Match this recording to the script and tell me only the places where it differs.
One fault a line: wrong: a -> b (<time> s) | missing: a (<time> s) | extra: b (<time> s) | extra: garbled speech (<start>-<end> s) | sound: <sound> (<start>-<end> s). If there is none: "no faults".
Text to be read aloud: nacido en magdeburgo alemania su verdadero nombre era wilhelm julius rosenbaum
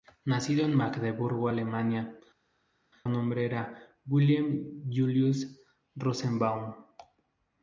missing: su verdadero (2.2 s)